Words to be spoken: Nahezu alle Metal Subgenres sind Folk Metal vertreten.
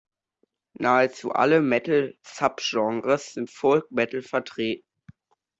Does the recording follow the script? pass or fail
pass